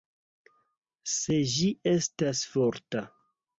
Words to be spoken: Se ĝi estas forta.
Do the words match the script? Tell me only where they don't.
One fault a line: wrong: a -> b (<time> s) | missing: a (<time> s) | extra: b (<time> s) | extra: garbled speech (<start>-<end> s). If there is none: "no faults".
no faults